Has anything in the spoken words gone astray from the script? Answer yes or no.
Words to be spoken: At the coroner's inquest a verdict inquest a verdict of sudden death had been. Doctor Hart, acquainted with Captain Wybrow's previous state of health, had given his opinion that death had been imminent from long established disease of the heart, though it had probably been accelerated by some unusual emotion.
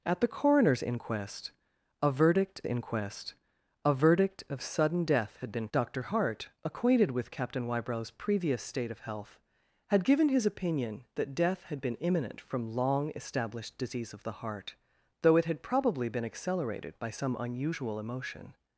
no